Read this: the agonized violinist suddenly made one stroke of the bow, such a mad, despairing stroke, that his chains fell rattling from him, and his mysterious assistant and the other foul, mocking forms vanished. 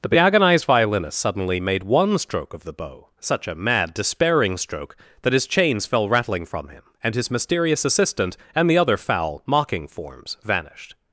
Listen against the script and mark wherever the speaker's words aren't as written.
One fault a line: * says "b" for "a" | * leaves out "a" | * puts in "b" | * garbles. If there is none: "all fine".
all fine